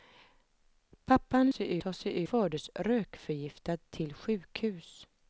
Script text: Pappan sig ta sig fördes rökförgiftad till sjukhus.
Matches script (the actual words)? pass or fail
pass